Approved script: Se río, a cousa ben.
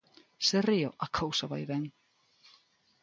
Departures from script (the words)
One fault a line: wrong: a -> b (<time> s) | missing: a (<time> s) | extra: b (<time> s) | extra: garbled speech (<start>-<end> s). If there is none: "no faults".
extra: vai (1.5 s)